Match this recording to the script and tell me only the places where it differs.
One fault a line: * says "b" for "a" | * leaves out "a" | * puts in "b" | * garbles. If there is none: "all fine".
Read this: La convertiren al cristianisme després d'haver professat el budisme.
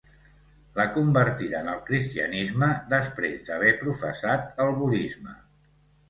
all fine